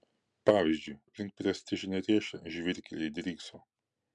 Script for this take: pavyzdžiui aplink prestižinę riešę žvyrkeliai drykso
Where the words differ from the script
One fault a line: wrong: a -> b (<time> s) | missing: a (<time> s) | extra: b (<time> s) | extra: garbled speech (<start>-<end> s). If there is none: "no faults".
no faults